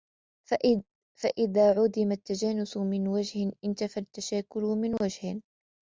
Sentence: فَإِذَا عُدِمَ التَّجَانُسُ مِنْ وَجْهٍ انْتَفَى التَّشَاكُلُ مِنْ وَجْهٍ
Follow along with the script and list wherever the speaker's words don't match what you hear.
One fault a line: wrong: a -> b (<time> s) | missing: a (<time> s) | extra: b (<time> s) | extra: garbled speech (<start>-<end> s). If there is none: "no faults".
no faults